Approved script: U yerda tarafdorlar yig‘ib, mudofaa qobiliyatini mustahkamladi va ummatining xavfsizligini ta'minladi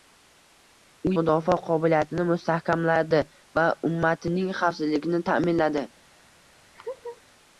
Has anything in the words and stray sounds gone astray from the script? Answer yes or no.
yes